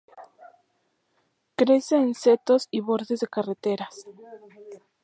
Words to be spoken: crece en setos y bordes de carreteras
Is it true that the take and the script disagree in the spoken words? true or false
false